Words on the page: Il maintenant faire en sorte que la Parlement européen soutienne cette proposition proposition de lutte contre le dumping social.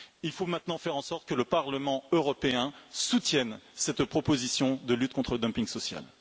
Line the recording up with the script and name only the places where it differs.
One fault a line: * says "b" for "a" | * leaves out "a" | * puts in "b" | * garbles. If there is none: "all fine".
* puts in "faut"
* says "le" for "la"
* leaves out "proposition"